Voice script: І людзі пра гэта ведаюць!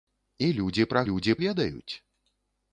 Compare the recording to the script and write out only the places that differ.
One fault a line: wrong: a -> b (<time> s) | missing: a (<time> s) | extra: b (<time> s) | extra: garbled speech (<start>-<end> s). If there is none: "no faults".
wrong: гэта -> людзі (1.1 s)